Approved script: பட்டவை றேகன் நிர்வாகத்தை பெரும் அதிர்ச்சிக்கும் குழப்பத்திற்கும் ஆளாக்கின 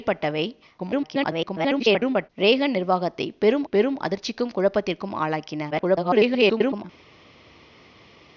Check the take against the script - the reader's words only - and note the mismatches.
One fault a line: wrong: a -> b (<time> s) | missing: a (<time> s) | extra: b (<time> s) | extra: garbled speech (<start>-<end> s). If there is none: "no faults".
extra: garbled speech (0.8-2.3 s)
extra: பெரும் (3.7 s)
extra: garbled speech (5.7-6.8 s)